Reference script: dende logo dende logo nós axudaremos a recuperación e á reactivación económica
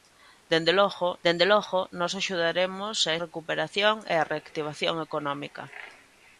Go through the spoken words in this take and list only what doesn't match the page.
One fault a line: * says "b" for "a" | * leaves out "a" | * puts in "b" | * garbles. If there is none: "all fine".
all fine